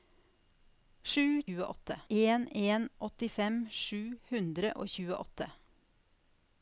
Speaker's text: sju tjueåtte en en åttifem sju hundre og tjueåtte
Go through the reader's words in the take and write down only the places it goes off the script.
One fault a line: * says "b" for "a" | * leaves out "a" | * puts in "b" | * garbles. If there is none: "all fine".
all fine